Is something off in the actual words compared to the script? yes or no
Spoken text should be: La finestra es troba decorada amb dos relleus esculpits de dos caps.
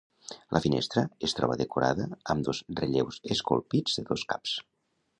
no